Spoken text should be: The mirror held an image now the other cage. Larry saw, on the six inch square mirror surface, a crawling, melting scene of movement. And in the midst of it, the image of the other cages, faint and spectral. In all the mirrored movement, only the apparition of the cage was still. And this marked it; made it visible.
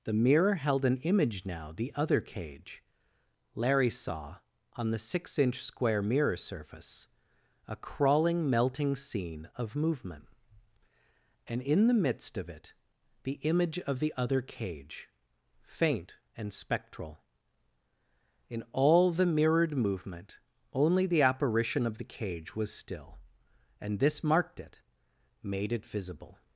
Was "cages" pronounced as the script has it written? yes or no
no